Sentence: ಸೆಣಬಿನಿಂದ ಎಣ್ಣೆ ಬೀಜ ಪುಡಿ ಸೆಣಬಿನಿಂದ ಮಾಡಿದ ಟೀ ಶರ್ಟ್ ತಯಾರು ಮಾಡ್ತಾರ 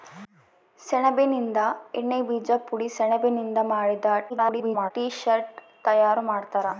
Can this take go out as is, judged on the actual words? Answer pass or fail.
fail